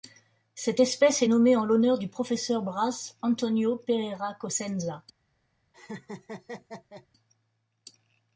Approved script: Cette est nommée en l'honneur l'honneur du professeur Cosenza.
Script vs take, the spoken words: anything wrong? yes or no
yes